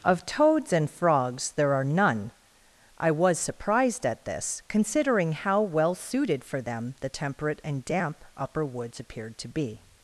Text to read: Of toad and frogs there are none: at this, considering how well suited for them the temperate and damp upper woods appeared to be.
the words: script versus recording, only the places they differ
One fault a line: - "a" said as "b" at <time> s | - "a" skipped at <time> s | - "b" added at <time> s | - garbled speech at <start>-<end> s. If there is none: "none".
- "toad" said as "toads" at 0.2 s
- "I was surprised" added at 3.0 s